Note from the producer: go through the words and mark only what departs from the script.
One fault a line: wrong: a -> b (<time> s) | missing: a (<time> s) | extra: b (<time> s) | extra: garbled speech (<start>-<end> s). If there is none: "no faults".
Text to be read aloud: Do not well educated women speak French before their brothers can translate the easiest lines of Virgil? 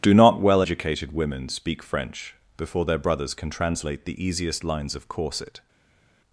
wrong: Virgil -> Corset (5.1 s)